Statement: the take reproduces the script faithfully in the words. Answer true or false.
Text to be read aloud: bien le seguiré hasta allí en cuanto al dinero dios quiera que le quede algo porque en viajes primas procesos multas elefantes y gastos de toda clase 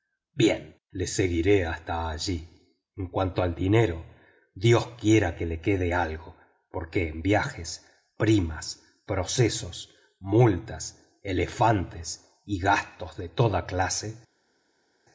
true